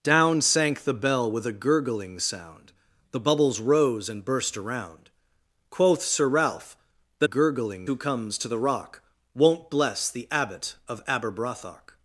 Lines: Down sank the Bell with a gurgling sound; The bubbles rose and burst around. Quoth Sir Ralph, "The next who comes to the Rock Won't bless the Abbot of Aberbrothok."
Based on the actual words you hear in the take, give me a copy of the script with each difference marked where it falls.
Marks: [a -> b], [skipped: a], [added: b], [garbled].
Down sank the Bell with a gurgling sound; The bubbles rose and burst around. Quoth Sir Ralph, "The [next -> gurgling] who comes to the Rock Won't bless the Abbot of Aberbrothok."